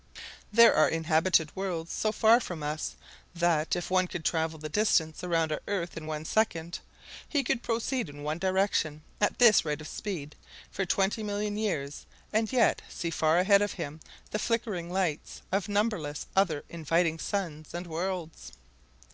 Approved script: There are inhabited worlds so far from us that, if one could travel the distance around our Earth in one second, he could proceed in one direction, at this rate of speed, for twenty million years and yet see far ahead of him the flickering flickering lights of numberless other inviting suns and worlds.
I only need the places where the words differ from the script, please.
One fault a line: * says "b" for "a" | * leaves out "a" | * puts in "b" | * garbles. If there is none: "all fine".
* leaves out "flickering"